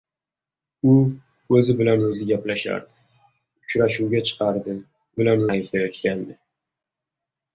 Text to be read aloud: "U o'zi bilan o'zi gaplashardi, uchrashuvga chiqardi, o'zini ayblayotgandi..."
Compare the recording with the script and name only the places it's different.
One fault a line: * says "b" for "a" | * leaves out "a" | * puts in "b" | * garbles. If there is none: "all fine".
* says "bilan" for "o'zini"